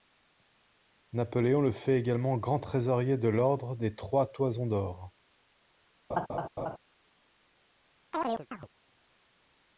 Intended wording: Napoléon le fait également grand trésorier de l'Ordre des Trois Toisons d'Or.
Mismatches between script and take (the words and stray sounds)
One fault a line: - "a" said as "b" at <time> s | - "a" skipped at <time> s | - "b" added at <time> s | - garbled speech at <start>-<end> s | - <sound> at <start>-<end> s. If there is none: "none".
- laugh at 6.1-6.8 s
- chirp at 8.1-8.7 s